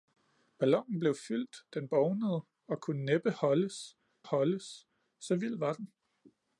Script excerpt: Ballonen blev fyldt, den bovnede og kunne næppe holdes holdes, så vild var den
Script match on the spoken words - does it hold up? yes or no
yes